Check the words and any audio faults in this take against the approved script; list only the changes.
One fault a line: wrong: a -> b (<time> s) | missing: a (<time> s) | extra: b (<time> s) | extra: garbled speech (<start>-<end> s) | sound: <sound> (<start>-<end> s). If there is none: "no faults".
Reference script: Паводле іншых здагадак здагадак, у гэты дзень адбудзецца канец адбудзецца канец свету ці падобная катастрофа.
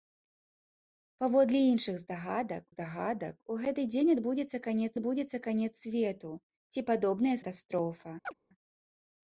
sound: chirp (8.2-8.3 s)